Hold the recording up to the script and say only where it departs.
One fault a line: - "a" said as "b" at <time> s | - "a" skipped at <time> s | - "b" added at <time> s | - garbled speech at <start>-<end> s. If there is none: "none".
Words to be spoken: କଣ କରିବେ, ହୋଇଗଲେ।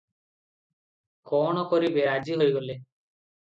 - "ରାଜି" added at 2.0 s